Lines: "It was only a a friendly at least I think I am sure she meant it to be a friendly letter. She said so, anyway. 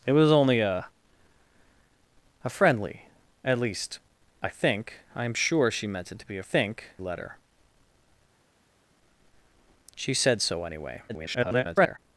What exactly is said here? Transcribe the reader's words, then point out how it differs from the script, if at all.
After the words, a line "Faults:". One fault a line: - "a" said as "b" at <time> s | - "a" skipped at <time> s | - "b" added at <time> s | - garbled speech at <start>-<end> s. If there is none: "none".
"It was only a a friendly at least I think I am sure she meant it to be a think letter. She said so, anyway. [garbled]
Faults:
- "friendly" said as "think" at 6.4 s
- garbled speech at 11.1-12.0 s